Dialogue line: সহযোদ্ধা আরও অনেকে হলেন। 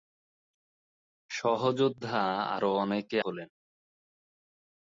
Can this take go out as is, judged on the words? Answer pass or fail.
pass